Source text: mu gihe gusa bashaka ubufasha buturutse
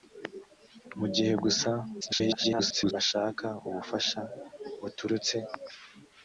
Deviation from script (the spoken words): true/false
true